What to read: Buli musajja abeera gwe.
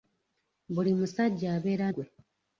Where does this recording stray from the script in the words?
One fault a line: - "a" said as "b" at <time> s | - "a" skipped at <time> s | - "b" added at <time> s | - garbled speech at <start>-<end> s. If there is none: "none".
none